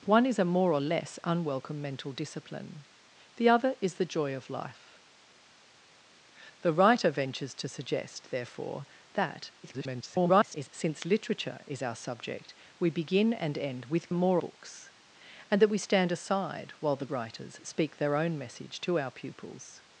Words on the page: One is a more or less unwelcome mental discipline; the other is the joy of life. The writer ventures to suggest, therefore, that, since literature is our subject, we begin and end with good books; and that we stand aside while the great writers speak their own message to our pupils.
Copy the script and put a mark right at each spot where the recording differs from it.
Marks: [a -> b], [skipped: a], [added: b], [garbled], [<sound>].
One is a more or less unwelcome mental discipline; the other is the joy of life. The writer ventures to suggest, therefore, that, [garbled] since literature is our subject, we begin and end with [good -> more] books; and that we stand aside while the [skipped: great] writers speak their own message to our pupils.